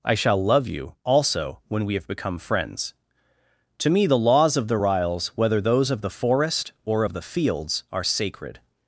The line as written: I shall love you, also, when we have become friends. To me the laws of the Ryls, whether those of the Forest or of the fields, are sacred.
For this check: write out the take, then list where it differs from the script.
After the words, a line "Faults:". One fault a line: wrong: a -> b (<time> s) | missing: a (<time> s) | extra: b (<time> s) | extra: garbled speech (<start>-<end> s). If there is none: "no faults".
I shall love you, also, when we have become friends. To me the laws of the Ryls, whether those of the Forest or of the fields, are sacred.
Faults:
no faults